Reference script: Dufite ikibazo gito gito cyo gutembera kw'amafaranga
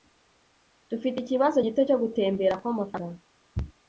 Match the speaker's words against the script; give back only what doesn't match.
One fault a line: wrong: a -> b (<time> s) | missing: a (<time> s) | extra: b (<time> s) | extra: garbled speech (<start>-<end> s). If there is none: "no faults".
missing: gito (1.8 s)